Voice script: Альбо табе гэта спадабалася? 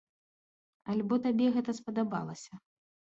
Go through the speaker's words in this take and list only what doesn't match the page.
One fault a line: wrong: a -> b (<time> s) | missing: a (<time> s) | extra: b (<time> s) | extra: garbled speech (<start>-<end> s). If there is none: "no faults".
no faults